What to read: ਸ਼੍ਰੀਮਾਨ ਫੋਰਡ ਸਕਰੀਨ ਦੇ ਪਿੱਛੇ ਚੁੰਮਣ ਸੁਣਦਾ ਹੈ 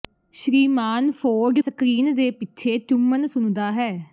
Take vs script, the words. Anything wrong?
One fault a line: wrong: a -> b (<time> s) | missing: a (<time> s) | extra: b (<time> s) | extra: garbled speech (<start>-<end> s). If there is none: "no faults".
no faults